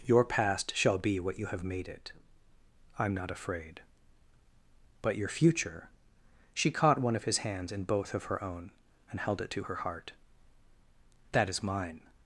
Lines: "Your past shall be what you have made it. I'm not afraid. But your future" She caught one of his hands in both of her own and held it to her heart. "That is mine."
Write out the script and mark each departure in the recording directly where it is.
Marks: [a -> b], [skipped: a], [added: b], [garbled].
"Your past shall be what you have made it. I'm not afraid. But your future" She caught one of his hands in both of her own and held it to her heart. "That is mine."